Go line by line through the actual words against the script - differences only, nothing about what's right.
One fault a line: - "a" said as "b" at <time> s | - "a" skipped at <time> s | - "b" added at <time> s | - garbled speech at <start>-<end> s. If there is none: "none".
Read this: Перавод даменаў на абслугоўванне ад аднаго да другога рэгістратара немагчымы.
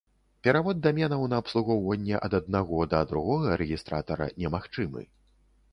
none